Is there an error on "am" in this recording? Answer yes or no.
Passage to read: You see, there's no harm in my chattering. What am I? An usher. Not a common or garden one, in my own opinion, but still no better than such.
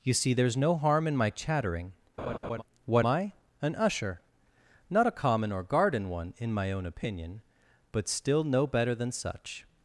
yes